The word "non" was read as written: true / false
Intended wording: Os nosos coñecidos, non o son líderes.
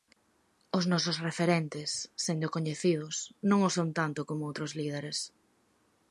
true